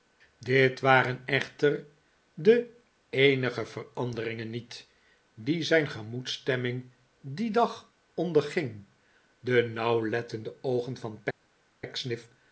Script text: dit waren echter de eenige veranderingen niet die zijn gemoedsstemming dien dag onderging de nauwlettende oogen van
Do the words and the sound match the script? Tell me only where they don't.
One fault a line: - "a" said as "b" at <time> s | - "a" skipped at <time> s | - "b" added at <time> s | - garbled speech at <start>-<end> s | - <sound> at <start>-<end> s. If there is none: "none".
none